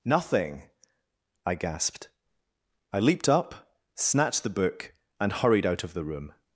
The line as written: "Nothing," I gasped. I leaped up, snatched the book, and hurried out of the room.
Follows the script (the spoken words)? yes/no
yes